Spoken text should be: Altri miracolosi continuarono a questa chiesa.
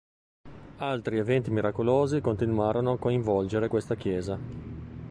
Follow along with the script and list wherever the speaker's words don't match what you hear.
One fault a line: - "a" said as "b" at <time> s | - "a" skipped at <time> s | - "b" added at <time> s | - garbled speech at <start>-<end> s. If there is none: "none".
- "eventi" added at 1.2 s
- "coinvolgere" added at 3.0 s